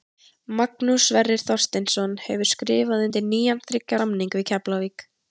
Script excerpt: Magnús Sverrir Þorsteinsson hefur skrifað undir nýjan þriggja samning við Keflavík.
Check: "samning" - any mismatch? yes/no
no